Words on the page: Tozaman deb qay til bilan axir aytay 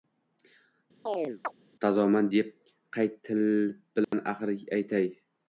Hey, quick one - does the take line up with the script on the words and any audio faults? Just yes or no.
no